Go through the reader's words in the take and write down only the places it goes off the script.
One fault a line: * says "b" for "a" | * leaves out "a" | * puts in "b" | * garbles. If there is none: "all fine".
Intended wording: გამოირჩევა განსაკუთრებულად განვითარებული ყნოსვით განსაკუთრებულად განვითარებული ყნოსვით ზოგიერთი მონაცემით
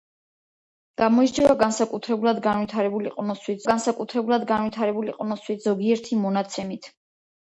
all fine